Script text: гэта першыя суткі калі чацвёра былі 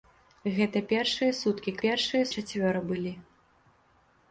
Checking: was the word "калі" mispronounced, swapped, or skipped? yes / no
yes